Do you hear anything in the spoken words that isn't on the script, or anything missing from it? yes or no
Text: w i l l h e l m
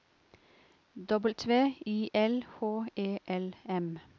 yes